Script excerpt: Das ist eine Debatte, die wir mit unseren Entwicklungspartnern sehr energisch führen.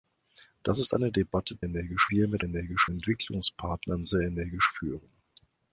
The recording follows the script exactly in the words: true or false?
false